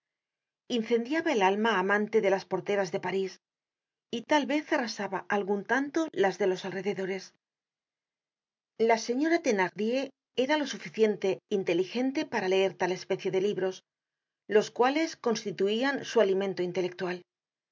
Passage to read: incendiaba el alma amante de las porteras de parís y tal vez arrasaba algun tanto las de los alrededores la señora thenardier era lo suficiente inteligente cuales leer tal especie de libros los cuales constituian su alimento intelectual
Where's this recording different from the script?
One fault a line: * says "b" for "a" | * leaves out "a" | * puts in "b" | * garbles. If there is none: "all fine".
* says "para" for "cuales"